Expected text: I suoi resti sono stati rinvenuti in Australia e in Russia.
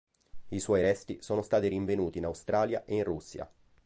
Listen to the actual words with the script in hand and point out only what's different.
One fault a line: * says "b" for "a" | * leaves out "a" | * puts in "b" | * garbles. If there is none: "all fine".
all fine